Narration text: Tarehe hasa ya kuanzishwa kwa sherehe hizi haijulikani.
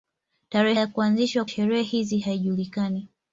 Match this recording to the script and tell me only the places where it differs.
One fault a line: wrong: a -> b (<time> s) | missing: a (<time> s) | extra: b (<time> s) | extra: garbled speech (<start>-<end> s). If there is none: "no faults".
missing: hasa (0.8 s)
missing: kwa (1.4 s)